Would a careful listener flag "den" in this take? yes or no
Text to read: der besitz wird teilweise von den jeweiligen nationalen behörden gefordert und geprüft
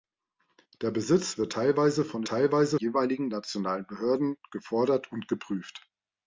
yes